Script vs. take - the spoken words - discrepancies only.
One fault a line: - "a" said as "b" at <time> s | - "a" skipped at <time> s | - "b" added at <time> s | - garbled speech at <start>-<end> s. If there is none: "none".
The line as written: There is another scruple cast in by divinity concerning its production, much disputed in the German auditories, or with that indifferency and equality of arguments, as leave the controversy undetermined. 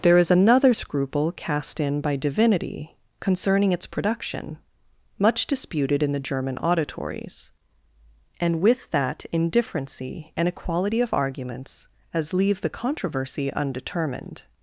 - "or" said as "and" at 8.4 s